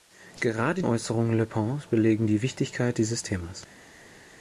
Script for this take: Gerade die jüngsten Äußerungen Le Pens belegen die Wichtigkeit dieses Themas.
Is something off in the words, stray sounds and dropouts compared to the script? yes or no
yes